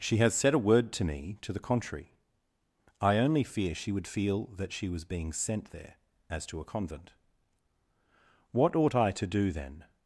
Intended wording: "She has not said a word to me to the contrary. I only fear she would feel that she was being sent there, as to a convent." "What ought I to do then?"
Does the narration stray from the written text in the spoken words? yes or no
yes